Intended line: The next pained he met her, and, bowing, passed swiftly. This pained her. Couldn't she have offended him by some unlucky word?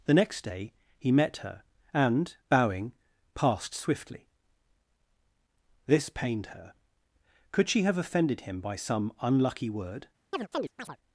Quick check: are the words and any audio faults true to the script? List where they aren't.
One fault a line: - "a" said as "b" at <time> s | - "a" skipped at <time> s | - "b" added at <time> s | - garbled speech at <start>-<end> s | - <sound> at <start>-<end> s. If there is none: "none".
- "pained" said as "day" at 0.4 s
- "Couldn't" said as "Could" at 7.5 s
- chirp at 10.3-11.0 s